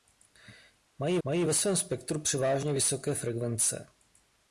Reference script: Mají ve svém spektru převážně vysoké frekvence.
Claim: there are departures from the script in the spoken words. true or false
true